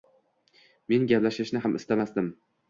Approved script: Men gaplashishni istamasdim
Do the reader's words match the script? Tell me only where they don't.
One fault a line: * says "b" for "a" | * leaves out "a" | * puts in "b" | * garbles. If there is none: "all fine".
* puts in "ham"